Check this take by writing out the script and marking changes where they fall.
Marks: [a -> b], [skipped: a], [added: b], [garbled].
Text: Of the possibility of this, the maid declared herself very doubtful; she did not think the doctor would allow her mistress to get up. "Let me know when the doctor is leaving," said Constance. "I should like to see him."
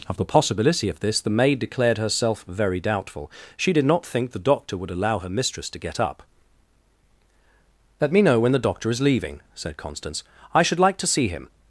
Of the possibility of this, the maid declared herself very doubtful; she did not think the doctor would allow her mistress to get up. "Let me know when the doctor is leaving," said Constance. "I should like to see him."